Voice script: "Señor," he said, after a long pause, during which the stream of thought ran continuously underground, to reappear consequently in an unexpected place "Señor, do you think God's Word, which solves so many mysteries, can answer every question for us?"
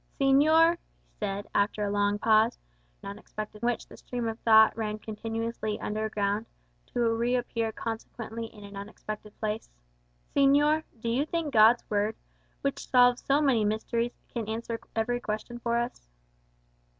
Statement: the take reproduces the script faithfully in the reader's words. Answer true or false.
false